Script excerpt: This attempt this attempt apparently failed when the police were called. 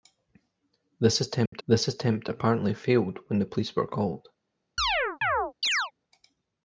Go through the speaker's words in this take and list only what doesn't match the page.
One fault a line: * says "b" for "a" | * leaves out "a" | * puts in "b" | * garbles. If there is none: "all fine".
all fine